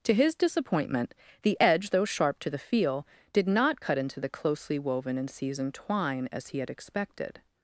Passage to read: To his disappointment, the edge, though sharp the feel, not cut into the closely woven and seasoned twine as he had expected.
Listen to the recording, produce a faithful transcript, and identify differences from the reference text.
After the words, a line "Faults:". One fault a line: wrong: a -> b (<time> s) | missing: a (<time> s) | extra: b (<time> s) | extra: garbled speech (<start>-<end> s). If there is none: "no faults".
To his disappointment, the edge, though sharp to the feel, did not cut into the closely woven and seasoned twine as he had expected.
Faults:
extra: to (2.4 s)
extra: did (3.3 s)